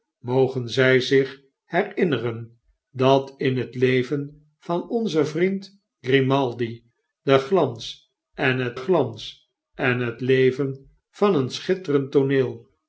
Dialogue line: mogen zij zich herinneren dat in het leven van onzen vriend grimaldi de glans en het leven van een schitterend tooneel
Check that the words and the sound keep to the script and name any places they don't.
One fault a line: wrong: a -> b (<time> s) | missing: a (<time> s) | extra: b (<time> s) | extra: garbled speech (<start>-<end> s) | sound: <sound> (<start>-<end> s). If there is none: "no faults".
extra: glans en het (8.7 s)